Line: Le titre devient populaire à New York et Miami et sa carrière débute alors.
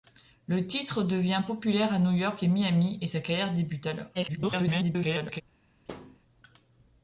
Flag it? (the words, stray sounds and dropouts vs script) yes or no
yes